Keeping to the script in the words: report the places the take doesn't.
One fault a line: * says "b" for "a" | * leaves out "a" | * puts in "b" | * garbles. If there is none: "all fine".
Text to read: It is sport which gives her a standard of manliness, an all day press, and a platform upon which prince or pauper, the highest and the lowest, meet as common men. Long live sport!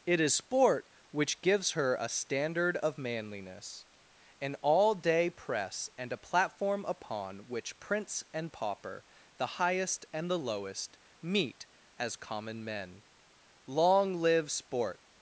* says "and" for "or"